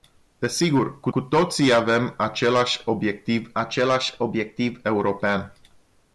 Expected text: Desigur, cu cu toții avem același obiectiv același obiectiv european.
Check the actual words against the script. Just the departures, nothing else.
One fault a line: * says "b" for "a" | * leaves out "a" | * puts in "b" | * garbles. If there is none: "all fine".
all fine